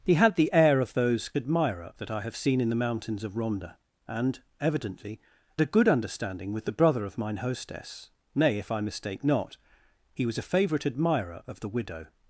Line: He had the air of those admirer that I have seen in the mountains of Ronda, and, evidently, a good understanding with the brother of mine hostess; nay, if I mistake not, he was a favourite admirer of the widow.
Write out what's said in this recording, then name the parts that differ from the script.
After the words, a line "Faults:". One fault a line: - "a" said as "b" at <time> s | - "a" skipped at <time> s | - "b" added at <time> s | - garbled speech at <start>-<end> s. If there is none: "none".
He had the air of those admirer that I have seen in the mountains of Ronda, and, evidently, a good understanding with the brother of mine hostess; nay, if I mistake not, he was a favourite admirer of the widow.
Faults:
none